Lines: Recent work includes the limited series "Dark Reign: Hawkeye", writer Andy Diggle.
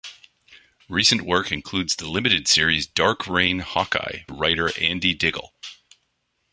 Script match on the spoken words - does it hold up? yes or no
yes